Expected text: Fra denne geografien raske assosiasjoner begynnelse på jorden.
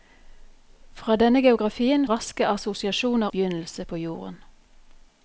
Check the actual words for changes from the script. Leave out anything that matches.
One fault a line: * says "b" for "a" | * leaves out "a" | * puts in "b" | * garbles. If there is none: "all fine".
all fine